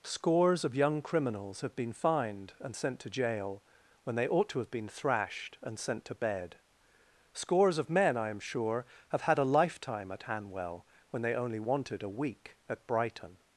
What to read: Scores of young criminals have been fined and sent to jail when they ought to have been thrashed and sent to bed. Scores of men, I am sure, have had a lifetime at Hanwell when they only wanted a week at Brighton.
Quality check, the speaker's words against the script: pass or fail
pass